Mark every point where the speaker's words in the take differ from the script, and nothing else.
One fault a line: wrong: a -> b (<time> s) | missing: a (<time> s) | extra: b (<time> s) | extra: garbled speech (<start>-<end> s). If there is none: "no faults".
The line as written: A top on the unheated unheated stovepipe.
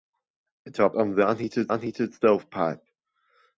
no faults